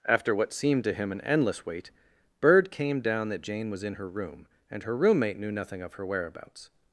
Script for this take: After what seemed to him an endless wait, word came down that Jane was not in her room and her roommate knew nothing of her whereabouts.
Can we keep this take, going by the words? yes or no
no